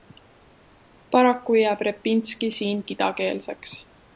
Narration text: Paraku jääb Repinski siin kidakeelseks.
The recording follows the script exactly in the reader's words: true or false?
true